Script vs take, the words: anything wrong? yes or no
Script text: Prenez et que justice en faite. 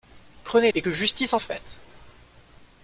no